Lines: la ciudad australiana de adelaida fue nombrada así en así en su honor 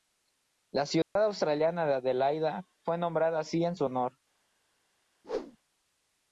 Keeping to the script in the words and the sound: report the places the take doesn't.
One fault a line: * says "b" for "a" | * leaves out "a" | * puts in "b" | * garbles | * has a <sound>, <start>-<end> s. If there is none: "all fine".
* has a dropout, 1.0-1.2 s
* leaves out "así en"
* has a whoosh, 5.2-5.6 s